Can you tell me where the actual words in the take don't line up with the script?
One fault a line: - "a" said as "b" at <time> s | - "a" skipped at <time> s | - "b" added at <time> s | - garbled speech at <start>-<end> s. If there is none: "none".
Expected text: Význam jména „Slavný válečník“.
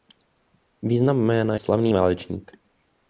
none